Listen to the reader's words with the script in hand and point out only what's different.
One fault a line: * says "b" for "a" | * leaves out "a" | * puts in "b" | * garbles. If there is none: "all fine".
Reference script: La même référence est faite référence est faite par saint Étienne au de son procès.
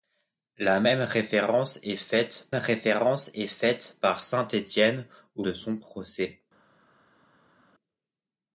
all fine